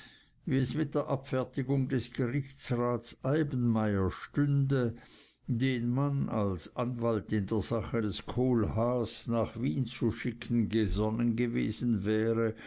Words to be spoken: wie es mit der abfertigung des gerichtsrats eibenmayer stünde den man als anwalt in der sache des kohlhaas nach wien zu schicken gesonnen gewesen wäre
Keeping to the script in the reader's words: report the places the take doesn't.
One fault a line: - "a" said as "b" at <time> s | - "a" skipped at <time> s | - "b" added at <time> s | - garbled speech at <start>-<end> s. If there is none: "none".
none